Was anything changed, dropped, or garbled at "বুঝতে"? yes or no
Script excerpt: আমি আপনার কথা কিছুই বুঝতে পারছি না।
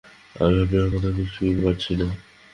yes